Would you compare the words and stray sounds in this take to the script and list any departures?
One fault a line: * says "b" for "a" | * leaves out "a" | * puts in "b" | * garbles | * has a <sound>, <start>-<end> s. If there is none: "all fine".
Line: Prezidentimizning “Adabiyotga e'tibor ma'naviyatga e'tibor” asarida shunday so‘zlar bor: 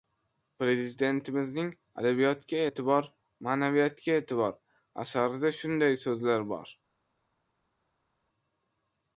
all fine